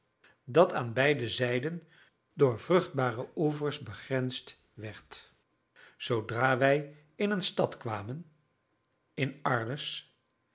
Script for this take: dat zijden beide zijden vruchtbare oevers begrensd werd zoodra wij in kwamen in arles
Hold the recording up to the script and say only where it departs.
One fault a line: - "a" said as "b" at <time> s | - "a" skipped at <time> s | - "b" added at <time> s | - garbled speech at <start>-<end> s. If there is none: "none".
- "zijden" said as "aan" at 0.7 s
- "door" added at 2.3 s
- "een stad" added at 7.3 s